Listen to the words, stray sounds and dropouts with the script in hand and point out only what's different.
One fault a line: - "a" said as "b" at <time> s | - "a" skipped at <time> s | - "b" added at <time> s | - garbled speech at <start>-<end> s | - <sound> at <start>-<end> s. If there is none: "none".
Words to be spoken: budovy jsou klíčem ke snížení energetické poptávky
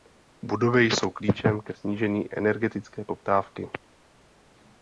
none